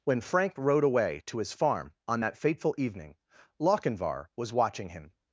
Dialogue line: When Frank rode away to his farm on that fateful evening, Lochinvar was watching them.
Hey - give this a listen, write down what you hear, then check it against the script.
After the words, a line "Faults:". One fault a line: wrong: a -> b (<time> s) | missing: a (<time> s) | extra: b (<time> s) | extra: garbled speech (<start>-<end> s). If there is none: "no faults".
When Frank rode away to his farm on that fateful evening, Lochinvar was watching him.
Faults:
wrong: them -> him (4.9 s)